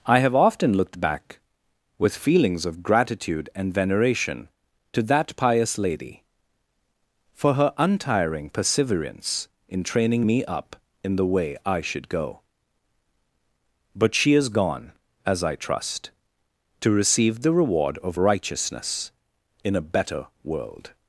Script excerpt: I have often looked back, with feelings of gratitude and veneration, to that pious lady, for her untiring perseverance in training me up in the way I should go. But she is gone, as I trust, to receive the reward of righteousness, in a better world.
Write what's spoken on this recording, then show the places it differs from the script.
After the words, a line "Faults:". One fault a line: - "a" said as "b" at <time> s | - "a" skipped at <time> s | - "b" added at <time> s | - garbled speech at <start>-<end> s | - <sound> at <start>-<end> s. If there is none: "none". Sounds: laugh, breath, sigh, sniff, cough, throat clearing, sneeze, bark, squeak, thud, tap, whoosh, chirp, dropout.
I have often looked back, with feelings of gratitude and veneration, to that pious lady, for her untiring perseverance in training me up in the way I should go. But she is gone, as I trust, to receive the reward of righteousness, in a better world.
Faults:
none